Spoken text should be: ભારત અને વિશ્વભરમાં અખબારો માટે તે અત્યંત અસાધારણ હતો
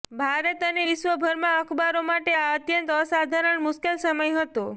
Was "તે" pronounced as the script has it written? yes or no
no